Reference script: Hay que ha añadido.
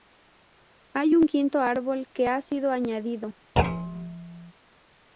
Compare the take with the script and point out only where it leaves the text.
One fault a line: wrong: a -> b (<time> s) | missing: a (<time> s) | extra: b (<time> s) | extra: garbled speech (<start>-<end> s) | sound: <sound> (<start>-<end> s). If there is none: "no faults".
extra: un quinto árbol (1.1 s)
extra: sido (2.4 s)
sound: thud (3.6-4.5 s)